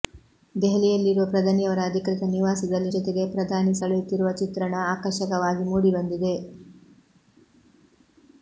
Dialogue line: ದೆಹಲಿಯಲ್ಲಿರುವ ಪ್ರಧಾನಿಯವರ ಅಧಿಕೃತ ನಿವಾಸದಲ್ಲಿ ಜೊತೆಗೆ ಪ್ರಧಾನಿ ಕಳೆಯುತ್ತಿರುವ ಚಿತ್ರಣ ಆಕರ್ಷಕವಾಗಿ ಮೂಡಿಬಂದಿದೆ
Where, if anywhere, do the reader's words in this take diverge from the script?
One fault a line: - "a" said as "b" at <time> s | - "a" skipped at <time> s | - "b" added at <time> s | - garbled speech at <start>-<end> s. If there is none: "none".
none